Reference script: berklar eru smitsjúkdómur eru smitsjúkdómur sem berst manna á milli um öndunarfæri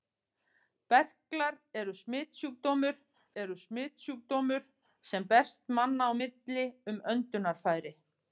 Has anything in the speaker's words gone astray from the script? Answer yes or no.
no